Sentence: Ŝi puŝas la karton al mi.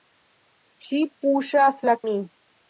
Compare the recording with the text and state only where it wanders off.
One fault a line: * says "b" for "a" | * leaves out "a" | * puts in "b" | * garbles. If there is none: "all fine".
* leaves out "karton al"